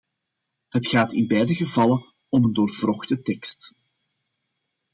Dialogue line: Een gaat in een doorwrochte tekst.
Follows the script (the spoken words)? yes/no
no